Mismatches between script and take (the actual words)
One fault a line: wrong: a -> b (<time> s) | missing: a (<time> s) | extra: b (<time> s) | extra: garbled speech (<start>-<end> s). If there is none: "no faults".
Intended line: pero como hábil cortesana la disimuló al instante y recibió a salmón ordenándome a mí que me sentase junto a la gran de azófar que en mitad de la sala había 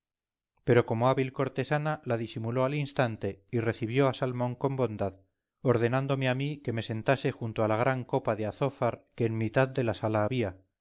extra: con bondad (4.5 s)
extra: copa (8.0 s)